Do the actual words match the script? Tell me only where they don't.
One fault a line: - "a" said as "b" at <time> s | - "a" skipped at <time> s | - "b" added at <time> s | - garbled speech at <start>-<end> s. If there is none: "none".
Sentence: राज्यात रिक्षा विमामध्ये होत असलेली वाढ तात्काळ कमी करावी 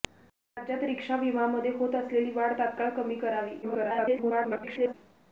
- garbled speech at 3.6-4.9 s